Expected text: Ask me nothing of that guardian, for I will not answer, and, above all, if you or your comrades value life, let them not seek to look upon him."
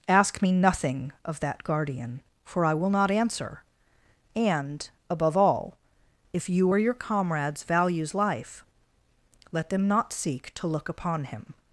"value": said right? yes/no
no